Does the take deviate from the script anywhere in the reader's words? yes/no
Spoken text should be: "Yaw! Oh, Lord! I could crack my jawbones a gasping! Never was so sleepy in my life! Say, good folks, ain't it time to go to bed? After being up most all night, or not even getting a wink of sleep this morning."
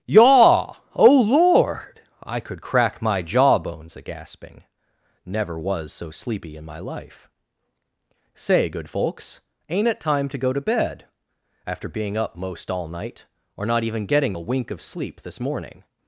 no